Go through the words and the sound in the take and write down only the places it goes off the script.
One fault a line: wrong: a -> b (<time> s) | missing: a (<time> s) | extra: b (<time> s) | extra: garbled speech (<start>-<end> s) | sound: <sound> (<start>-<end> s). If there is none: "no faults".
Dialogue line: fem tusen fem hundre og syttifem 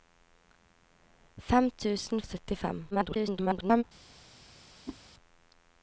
missing: fem hundre (2.2 s)
extra: garbled speech (2.9-3.8 s)
sound: whoosh (4.9-5.0 s)